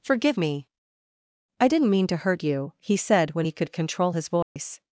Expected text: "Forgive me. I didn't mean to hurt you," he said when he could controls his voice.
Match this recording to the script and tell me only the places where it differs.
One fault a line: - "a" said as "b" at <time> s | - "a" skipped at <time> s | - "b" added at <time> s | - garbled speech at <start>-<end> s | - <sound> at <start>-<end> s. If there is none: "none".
- "controls" said as "control" at 3.7 s
- dropout at 4.4-4.6 s